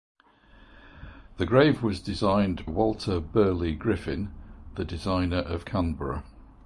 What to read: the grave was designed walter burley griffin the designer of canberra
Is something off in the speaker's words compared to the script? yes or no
no